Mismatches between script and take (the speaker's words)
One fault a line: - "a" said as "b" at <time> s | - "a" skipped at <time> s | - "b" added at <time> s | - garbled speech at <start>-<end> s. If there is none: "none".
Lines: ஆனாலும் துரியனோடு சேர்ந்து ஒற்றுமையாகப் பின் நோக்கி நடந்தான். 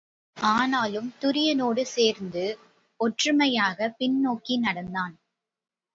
none